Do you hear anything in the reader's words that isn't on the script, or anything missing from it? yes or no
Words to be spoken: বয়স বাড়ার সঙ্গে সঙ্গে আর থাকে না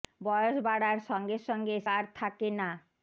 no